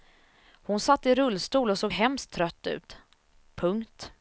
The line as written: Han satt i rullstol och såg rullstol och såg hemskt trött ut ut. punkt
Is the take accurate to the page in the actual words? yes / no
no